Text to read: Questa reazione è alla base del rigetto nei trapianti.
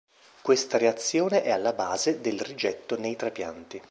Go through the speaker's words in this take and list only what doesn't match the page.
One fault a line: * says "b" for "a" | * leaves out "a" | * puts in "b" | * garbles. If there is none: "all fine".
all fine